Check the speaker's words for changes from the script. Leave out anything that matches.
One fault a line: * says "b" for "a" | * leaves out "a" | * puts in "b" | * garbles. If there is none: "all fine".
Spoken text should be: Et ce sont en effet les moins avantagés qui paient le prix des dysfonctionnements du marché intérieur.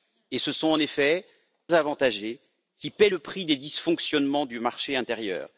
* leaves out "les moins"